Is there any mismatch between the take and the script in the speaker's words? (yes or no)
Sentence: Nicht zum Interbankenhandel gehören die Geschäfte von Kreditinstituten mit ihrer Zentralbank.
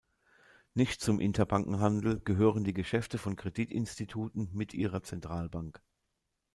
no